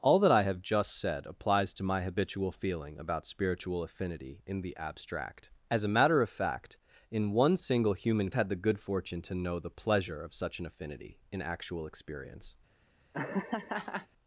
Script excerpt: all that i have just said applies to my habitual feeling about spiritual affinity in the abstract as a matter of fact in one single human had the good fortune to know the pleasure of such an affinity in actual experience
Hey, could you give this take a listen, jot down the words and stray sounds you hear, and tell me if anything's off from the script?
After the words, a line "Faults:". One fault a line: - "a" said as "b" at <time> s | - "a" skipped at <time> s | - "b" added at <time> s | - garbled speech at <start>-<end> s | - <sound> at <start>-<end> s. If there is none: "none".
all that i have just said applies to my habitual feeling about spiritual affinity in the abstract as a matter of fact in one single human had the good fortune to know the pleasure of such an affinity in actual experience
Faults:
- laugh at 13.1-14.1 s